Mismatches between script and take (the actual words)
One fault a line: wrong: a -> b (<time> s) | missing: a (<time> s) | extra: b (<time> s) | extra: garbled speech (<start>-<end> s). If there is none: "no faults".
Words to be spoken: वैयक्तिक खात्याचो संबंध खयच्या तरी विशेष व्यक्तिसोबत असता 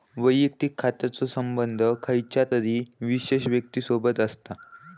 no faults